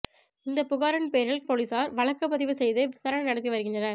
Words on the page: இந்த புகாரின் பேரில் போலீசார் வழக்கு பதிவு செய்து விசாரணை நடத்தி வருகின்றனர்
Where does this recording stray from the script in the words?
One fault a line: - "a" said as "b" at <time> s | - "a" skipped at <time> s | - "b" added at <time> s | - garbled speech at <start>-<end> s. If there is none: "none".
none